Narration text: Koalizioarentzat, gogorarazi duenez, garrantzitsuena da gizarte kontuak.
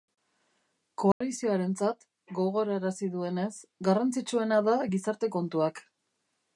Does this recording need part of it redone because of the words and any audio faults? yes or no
yes